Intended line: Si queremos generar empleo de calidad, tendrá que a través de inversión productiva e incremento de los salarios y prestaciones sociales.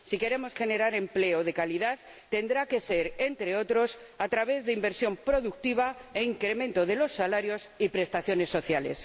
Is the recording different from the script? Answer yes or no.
yes